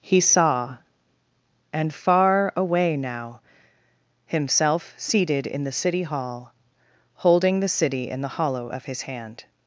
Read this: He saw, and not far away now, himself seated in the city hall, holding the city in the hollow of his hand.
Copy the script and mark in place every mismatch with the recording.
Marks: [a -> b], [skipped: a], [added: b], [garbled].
He saw, and [skipped: not] far away now, himself seated in the city hall, holding the city in the hollow of his hand.